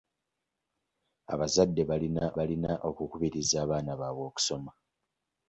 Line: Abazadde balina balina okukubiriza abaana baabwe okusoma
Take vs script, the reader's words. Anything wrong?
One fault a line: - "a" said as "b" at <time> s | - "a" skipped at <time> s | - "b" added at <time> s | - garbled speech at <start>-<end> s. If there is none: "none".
none